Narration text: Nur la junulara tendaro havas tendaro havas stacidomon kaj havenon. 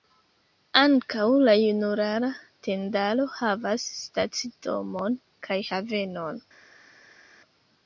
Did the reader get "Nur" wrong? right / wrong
wrong